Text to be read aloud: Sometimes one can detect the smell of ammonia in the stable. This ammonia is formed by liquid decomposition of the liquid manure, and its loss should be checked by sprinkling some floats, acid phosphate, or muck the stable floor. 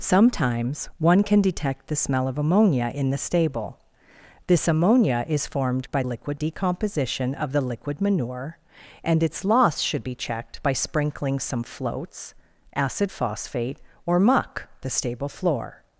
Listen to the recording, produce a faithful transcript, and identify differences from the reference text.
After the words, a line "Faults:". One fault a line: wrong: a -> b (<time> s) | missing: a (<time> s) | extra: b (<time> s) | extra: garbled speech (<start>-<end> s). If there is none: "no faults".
Sometimes one can detect the smell of ammonia in the stable. This ammonia is formed by liquid decomposition of the liquid manure, and its loss should be checked by sprinkling some floats, acid phosphate, or muck the stable floor.
Faults:
no faults